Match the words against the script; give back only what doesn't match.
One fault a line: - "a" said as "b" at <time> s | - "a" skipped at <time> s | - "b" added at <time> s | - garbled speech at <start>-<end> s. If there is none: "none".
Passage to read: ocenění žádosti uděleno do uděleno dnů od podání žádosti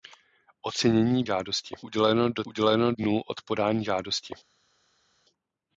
none